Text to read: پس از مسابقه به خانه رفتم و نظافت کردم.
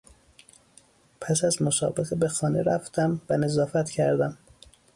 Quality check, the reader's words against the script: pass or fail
pass